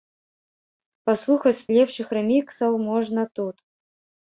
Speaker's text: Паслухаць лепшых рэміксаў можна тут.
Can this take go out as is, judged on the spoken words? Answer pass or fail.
pass